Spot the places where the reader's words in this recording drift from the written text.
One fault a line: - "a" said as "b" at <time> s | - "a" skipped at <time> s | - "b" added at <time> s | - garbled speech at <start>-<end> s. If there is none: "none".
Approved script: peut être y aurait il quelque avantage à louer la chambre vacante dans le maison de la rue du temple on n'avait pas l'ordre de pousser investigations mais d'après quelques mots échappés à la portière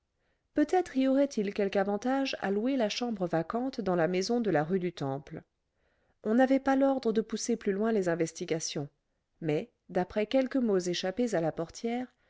- "le" said as "la" at 4.0 s
- "plus loin les" added at 7.5 s